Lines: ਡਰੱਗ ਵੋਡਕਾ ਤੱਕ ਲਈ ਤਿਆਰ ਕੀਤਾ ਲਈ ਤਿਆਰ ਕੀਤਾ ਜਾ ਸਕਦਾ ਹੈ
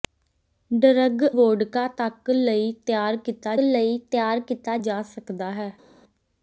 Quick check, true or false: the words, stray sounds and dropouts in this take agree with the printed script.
true